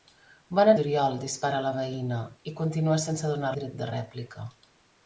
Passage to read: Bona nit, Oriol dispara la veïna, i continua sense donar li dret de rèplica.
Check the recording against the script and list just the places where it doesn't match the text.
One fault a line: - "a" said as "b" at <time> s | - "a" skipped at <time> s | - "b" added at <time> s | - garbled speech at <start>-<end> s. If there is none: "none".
- "nit" skipped at 0.7 s
- "li" skipped at 3.5 s